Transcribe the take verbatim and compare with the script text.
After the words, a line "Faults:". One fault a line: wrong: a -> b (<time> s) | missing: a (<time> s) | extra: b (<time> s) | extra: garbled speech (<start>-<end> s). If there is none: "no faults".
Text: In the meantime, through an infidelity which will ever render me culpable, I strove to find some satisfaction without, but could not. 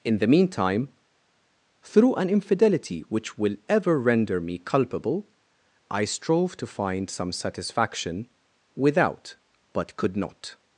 In the meantime, through an infidelity which will ever render me culpable, I strove to find some satisfaction without, but could not.
Faults:
no faults